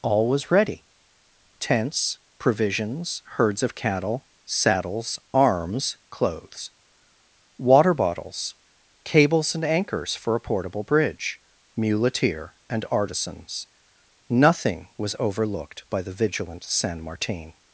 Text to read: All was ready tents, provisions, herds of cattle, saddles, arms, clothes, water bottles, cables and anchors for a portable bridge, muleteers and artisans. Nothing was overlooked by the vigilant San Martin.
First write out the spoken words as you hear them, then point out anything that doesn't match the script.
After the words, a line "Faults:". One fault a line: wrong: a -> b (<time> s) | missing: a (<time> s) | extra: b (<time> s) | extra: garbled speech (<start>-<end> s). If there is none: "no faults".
All was ready tents, provisions, herds of cattle, saddles, arms, clothes, water bottles, cables and anchors for a portable bridge, muleteer and artisans. Nothing was overlooked by the vigilant San Martin.
Faults:
wrong: muleteers -> muleteer (11.8 s)